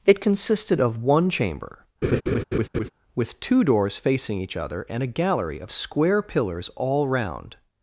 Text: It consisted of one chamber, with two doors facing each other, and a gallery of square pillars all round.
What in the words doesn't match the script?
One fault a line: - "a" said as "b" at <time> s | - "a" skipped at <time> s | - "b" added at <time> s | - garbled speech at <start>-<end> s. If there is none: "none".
none